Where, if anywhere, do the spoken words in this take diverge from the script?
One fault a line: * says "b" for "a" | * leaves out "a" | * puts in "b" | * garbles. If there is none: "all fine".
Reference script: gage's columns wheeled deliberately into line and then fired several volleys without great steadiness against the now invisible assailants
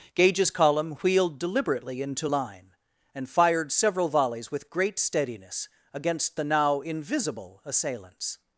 * says "column" for "columns"
* leaves out "then"
* says "with" for "without"